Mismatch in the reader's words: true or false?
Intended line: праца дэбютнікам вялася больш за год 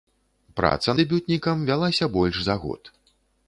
false